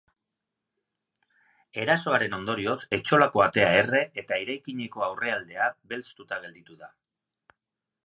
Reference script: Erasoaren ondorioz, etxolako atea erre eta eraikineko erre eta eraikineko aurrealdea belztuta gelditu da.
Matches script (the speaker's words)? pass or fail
fail